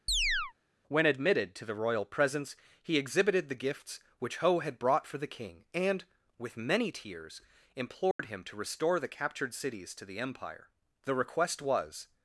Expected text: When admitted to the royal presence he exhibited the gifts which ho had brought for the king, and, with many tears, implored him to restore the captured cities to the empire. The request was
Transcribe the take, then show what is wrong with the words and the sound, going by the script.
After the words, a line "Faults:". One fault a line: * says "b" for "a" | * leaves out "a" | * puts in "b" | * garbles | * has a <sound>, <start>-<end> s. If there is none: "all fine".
When admitted to the royal presence he exhibited the gifts which ho had brought for the king, and, with many tears, implored him to restore the captured cities to the empire. The request was
Faults:
* has a chirp, 0.1-0.5 s
* has a dropout, 8.1-8.2 s